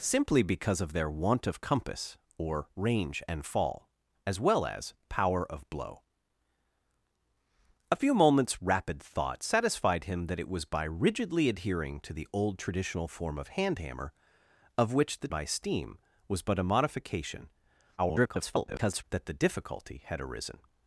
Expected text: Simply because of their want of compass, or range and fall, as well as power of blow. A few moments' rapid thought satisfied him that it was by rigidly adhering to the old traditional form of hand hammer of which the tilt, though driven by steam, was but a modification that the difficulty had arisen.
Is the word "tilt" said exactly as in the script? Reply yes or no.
no